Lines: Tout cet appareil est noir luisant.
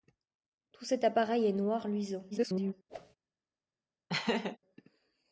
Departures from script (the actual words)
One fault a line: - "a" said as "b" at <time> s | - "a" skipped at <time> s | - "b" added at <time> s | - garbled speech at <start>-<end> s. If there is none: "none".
- garbled speech at 2.3-2.7 s